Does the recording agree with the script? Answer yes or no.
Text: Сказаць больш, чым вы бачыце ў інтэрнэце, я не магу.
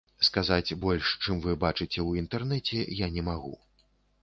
yes